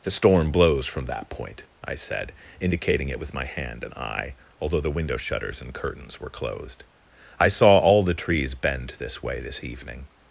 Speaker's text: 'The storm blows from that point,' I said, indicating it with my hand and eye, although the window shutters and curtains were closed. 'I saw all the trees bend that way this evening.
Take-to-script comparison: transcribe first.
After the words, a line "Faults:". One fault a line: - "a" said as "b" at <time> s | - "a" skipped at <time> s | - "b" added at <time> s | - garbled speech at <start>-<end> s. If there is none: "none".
'The storm blows from that point,' I said, indicating it with my hand and eye, although the window shutters and curtains were closed. 'I saw all the trees bend this way this evening.
Faults:
- "that" said as "this" at 9.0 s